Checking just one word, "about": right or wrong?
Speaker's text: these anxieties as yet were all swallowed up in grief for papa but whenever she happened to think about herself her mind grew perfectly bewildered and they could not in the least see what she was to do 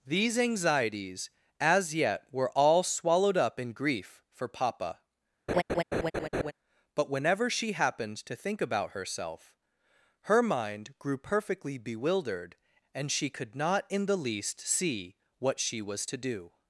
right